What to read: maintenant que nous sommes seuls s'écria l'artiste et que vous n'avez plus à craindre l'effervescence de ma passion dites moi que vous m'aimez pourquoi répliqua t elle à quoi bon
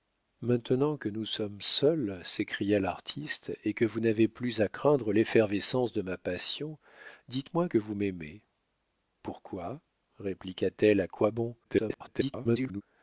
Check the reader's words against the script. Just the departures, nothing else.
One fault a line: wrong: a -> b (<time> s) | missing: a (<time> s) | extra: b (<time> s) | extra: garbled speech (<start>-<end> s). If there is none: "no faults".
extra: garbled speech (11.6-12.8 s)